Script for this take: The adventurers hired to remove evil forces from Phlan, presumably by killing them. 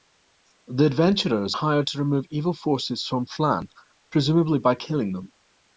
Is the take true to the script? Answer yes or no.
yes